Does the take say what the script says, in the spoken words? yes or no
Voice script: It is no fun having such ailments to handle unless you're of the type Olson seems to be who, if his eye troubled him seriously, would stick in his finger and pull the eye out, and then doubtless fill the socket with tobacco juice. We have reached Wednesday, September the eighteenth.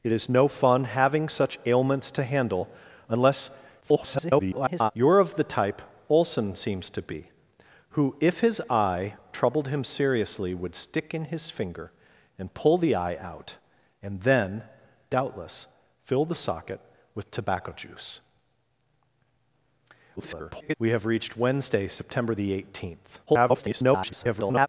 no